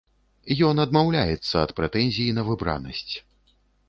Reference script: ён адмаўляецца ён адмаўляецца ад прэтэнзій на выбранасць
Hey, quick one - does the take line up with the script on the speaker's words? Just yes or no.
no